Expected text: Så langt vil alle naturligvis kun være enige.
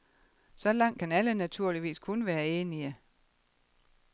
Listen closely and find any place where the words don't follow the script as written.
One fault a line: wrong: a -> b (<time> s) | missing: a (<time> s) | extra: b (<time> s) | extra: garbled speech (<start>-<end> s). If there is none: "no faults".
wrong: vil -> kan (1.0 s)